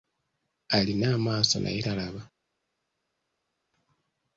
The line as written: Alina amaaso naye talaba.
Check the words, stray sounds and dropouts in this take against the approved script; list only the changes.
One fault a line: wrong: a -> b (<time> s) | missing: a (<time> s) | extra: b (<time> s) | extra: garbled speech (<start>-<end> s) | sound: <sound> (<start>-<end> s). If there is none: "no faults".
no faults